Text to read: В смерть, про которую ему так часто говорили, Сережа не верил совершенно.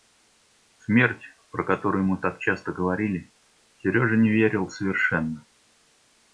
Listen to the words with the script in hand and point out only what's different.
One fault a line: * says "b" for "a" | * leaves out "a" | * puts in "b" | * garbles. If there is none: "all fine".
all fine